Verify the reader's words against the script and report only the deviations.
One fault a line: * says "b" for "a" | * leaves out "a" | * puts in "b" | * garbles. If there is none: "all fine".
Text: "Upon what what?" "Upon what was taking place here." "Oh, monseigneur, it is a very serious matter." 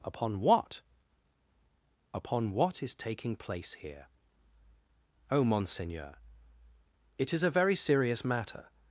* leaves out "what"
* says "is" for "was"